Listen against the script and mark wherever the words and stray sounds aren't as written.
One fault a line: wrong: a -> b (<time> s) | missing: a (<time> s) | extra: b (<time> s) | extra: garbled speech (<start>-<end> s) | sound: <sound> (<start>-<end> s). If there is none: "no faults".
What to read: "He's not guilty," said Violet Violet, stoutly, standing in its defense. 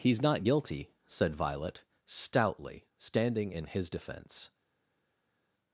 missing: Violet (1.8 s)
wrong: its -> his (3.7 s)